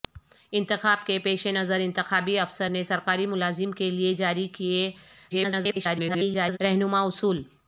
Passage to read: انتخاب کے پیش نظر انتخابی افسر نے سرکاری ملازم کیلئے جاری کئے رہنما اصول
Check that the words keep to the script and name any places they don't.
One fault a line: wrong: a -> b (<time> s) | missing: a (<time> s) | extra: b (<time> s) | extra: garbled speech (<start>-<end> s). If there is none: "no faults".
extra: garbled speech (5.3-6.6 s)